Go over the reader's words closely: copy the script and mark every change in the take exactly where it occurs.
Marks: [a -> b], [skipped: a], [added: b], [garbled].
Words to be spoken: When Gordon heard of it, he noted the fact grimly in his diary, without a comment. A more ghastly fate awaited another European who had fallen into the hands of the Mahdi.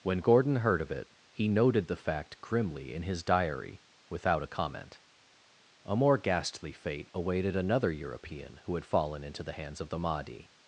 When Gordon heard of it, he noted the fact grimly in his diary, without a comment. A more ghastly fate awaited another European who had fallen into the hands of the Mahdi.